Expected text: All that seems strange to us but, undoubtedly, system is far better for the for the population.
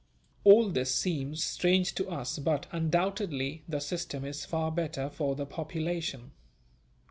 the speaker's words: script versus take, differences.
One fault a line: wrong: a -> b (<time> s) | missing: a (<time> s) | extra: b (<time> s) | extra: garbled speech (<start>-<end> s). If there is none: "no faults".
wrong: that -> this (0.7 s)
extra: the (3.7 s)
missing: for the (5.5 s)